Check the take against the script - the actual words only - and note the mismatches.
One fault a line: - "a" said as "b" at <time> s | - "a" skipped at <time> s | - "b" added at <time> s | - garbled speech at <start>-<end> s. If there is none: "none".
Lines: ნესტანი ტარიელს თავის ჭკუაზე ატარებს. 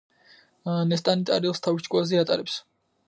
none